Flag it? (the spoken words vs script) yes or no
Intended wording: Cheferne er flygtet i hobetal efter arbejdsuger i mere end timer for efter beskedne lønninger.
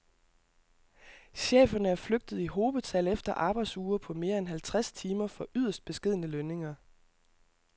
yes